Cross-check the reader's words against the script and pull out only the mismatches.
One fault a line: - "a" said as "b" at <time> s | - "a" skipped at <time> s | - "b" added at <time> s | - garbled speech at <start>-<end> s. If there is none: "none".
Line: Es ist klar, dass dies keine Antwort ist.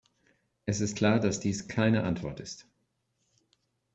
none